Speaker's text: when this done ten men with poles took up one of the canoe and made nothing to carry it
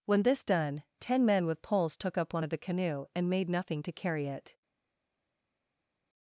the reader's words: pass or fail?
pass